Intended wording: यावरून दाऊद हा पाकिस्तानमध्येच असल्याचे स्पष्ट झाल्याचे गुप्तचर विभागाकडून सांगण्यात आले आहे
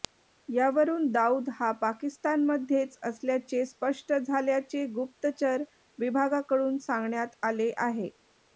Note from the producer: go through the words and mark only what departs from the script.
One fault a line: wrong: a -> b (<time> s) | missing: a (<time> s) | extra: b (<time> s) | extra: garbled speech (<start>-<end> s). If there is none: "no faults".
no faults